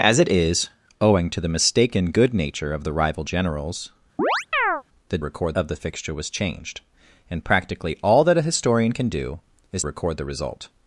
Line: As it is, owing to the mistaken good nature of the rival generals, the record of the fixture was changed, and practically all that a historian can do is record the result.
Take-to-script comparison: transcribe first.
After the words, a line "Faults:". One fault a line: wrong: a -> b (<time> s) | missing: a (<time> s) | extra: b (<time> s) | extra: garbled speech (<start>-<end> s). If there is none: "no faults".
As it is, owing to the mistaken good nature of the rival generals, the record of the fixture was changed, and practically all that a historian can do is record the result.
Faults:
no faults